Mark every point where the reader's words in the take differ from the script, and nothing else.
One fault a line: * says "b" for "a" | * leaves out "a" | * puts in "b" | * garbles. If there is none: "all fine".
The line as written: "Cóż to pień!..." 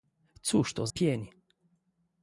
all fine